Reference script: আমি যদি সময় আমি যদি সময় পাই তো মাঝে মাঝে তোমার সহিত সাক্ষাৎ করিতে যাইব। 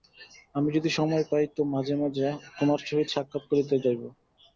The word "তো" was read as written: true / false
true